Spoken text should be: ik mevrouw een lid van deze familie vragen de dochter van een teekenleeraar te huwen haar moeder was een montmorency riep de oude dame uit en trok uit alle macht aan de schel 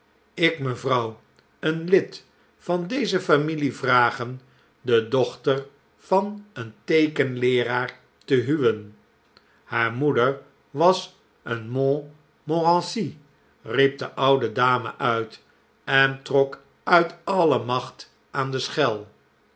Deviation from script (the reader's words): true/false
false